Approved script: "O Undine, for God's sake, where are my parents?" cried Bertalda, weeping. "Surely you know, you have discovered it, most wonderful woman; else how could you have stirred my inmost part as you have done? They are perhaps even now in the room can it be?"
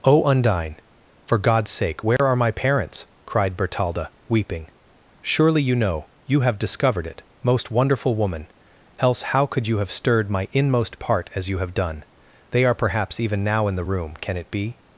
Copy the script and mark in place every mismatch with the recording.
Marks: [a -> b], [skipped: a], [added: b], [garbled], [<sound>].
"O Undine, for God's sake, where [dropout] are my parents?" cried Bertalda, weeping. "Surely you know, you have discovered it, most wonderful woman; else how could you have stirred my inmost part as you have done? They are perhaps even now in the room can it be?"